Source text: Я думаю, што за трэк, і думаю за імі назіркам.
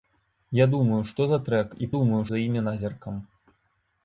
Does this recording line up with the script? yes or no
yes